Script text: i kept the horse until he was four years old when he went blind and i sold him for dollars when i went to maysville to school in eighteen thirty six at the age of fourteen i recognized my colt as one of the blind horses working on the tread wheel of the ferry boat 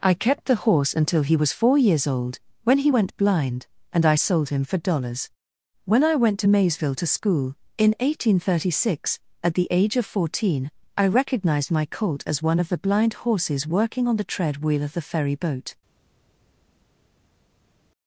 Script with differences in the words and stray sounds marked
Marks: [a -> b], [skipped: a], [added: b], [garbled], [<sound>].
i kept the horse until he was four years old when he went blind and i sold him for dollars when i went to maysville to school in eighteen thirty six at the age of fourteen i recognized my colt as one of the blind horses working on the tread wheel of the ferry boat